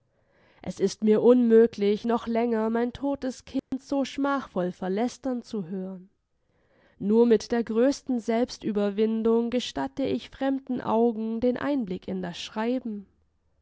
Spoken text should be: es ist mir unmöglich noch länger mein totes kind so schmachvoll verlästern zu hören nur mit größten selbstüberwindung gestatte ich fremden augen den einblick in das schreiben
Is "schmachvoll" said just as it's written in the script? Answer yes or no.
yes